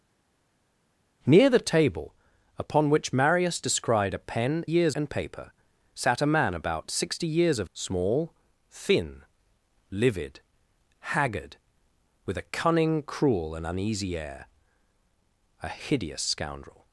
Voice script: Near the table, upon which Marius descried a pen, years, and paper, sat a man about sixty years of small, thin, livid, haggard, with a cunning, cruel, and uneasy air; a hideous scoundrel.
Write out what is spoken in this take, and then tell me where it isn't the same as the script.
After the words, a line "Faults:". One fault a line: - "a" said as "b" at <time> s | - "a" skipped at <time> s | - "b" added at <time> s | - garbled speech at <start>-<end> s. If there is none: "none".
Near the table, upon which Marius descried a pen, years, and paper, sat a man about sixty years of small, thin, livid, haggard, with a cunning, cruel, and uneasy air; a hideous scoundrel.
Faults:
none